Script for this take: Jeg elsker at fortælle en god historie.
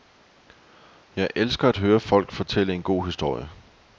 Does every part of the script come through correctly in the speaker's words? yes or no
no